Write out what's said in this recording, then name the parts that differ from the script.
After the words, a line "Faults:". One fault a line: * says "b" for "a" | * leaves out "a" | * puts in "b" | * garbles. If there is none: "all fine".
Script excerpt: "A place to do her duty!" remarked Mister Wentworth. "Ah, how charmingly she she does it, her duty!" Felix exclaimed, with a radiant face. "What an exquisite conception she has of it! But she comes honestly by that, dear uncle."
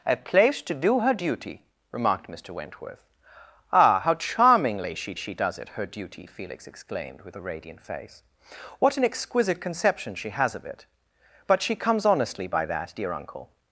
"A place to do her duty!" remarked Mister Wentworth. "Ah, how charmingly she she does it, her duty!" Felix exclaimed, with a radiant face. "What an exquisite conception she has of it! But she comes honestly by that, dear uncle."
Faults:
all fine